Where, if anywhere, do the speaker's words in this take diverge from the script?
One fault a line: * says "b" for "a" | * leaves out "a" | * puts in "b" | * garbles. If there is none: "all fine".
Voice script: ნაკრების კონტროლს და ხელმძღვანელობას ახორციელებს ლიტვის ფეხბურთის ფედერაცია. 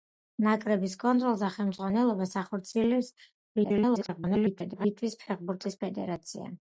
* garbles